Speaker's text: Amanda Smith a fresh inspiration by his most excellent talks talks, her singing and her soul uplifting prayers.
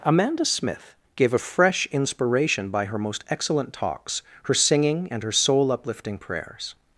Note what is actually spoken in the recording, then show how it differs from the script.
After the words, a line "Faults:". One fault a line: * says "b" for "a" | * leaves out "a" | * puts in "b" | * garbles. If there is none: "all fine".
Amanda Smith gave a fresh inspiration by her most excellent talks, her singing and her soul uplifting prayers.
Faults:
* puts in "gave"
* says "her" for "his"
* leaves out "talks"